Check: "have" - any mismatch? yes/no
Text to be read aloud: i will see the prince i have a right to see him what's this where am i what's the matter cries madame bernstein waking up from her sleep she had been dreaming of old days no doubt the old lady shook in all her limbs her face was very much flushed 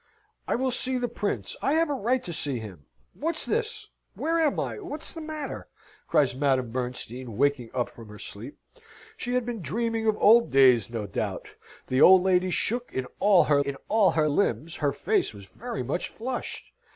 no